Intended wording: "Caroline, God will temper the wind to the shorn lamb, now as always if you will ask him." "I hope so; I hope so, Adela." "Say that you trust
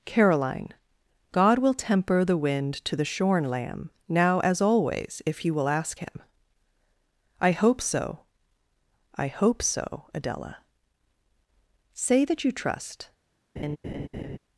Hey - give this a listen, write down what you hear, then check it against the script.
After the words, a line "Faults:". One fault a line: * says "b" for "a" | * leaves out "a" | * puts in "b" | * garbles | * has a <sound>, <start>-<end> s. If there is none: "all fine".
"Caroline, God will temper the wind to the shorn lamb, now as always if you will ask him." "I hope so; I hope so, Adela." "Say that you trust
Faults:
* has a laugh, 13.6-14.4 s